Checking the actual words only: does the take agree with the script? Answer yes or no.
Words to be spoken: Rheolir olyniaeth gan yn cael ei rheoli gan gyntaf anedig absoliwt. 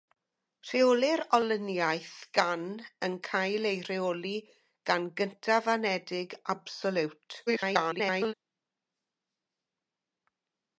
no